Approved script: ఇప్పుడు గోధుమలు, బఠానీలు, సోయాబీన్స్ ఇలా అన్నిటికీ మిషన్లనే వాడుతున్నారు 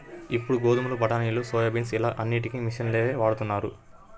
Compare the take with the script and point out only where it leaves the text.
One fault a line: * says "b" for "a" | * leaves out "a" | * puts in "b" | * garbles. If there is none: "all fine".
all fine